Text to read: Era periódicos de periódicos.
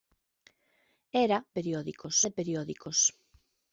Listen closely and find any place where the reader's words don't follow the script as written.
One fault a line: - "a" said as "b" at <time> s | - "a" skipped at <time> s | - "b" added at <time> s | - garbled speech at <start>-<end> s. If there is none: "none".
none